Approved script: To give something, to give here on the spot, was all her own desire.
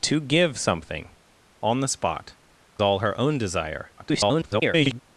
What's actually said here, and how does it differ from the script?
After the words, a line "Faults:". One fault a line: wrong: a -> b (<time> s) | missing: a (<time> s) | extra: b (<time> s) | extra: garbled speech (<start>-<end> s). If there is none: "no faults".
To give something, on the spot, all her own desire. [garbled]
Faults:
missing: to give here (1.1 s)
missing: was (2.4 s)
extra: garbled speech (4.0-5.0 s)